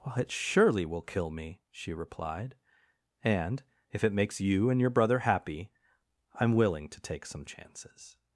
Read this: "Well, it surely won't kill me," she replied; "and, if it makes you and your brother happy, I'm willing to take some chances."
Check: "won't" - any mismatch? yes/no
yes